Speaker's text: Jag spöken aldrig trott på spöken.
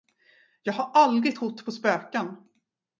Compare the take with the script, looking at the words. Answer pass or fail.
fail